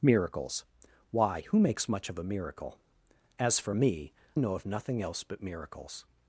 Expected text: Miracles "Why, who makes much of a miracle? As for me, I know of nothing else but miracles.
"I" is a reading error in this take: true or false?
true